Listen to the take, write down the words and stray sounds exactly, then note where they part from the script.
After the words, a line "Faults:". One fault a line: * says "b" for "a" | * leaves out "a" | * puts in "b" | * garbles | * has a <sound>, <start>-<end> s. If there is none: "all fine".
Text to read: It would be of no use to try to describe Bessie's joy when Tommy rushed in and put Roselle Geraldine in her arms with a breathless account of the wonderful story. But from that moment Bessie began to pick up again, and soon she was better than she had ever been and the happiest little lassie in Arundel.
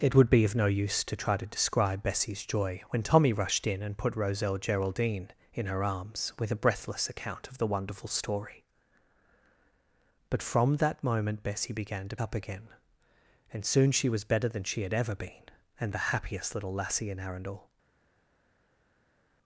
It would be of no use to try to describe Bessie's joy when Tommy rushed in and put Roselle Geraldine in her arms with a breathless account of the wonderful story. But from that moment Bessie began to up again, and soon she was better than she had ever been and the happiest little lassie in Arundel.
Faults:
* leaves out "pick"